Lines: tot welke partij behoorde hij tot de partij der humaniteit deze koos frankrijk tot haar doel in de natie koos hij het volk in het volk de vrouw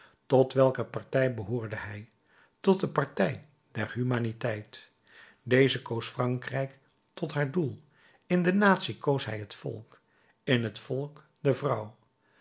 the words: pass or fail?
pass